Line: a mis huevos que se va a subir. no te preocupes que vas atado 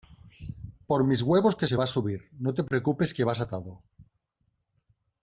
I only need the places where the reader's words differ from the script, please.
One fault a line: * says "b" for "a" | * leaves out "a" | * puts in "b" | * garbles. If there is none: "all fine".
* says "por" for "a"